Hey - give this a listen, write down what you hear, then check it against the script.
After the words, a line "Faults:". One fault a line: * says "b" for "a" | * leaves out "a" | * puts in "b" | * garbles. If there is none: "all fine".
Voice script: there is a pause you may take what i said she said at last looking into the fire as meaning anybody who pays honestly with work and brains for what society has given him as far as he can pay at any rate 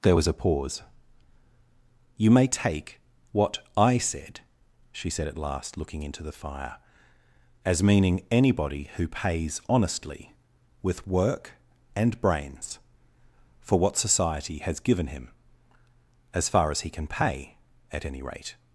there was a pause you may take what i said she said at last looking into the fire as meaning anybody who pays honestly with work and brains for what society has given him as far as he can pay at any rate
Faults:
* says "was" for "is"